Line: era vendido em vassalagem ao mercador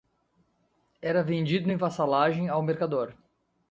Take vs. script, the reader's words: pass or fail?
pass